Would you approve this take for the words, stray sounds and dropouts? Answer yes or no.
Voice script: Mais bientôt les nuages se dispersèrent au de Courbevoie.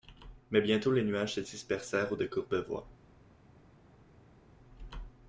yes